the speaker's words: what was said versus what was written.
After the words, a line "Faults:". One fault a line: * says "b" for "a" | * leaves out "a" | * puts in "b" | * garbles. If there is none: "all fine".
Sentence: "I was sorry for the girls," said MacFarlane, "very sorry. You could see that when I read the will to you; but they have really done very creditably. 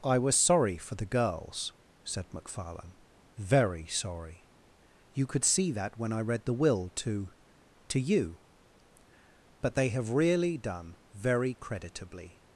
"I was sorry for the girls," said MacFarlane, "very sorry. You could see that when I read the will to to you; but they have really done very creditably.
Faults:
* puts in "to"